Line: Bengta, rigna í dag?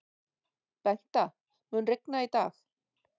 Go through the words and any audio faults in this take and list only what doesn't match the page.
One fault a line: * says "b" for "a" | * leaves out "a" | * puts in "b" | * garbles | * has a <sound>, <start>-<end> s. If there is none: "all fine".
* puts in "mun"